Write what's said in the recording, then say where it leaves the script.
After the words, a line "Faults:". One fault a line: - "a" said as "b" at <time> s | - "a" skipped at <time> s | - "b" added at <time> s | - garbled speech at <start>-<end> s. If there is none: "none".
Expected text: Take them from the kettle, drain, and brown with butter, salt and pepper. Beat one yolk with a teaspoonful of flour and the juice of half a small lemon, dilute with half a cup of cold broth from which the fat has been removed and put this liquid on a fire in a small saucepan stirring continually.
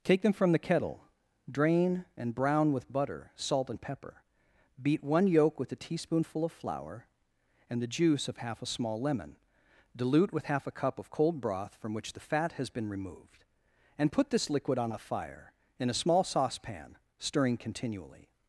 Take them from the kettle, drain, and brown with butter, salt and pepper. Beat one yolk with a teaspoonful of flour and the juice of half a small lemon, dilute with half a cup of cold broth from which the fat has been removed and put this liquid on a fire in a small saucepan stirring continually.
Faults:
none